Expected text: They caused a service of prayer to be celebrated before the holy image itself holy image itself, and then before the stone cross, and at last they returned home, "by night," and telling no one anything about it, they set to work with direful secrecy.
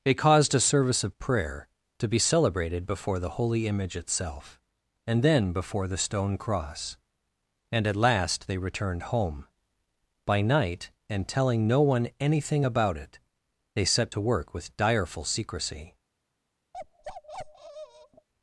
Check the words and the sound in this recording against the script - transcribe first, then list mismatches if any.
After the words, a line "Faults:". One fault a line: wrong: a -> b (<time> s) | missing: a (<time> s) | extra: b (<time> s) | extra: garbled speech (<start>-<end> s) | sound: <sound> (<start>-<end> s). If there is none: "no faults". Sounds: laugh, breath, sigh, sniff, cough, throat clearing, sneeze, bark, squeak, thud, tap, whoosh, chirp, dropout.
They caused a service of prayer to be celebrated before the holy image itself, and then before the stone cross, and at last they returned home, "by night," and telling no one anything about it, they set to work with direful secrecy.
Faults:
missing: holy image itself (4.6 s)
sound: bark (16.7-18.3 s)